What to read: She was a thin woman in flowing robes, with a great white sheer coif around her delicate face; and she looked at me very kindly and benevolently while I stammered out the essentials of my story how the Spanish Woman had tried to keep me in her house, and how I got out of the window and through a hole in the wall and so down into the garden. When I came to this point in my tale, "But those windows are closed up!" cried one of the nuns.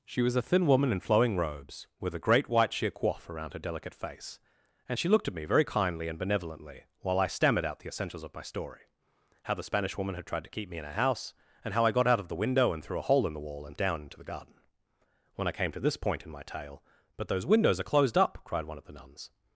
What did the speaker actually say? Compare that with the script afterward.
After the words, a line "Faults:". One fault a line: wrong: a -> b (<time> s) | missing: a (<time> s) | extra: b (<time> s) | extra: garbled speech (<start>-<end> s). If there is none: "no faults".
She was a thin woman in flowing robes, with a great white sheer coif around her delicate face; and she looked at me very kindly and benevolently while I stammered out the essentials of my story how the Spanish Woman had tried to keep me in her house, and how I got out of the window and through a hole in the wall and down into the garden. When I came to this point in my tale, "But those windows are closed up!" cried one of the nuns.
Faults:
missing: so (13.8 s)